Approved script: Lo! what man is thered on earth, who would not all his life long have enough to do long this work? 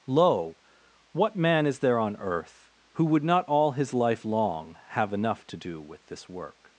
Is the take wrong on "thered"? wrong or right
wrong